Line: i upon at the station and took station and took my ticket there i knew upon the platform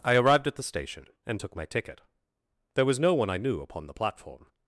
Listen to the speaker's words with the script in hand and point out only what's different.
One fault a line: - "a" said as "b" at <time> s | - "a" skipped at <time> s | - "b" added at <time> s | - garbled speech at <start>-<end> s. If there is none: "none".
- "upon" said as "arrived" at 0.1 s
- "station and took my ticket there" said as "my ticket there was no one" at 1.5 s